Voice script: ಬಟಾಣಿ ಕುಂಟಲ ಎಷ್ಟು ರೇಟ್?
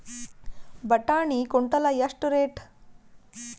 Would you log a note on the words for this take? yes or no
no